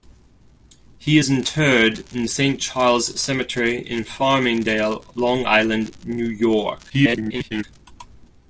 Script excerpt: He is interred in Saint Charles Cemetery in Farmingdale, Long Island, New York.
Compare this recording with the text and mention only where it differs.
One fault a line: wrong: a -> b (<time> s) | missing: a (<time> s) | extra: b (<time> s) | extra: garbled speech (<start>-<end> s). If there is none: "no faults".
extra: garbled speech (6.9-7.6 s)